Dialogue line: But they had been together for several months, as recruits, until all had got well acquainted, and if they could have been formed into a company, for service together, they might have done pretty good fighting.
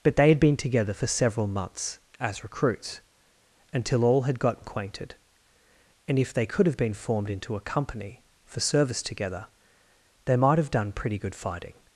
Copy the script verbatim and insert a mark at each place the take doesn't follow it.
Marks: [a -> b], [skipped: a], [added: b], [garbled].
But they had been together for several months, as recruits, until all had got [skipped: well] acquainted, and if they could have been formed into a company, for service together, they might have done pretty good fighting.